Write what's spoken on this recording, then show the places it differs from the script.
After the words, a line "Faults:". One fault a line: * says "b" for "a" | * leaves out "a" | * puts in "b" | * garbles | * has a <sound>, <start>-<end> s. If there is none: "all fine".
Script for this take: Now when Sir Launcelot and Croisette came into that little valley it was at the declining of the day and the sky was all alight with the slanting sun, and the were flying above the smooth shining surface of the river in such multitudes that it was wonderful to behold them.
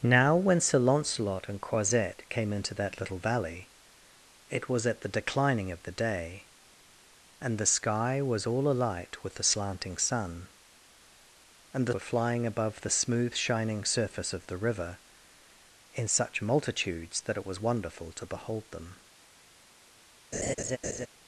Now when Sir Launcelot and Croisette came into that little valley it was at the declining of the day and the sky was all alight with the slanting sun, and the were flying above the smooth shining surface of the river in such multitudes that it was wonderful to behold them.
Faults:
* has a laugh, 20.3-21.1 s